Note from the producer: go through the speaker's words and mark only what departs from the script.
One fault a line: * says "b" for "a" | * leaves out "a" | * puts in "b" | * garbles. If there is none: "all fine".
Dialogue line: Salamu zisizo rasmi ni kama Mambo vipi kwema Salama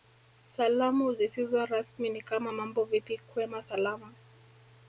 all fine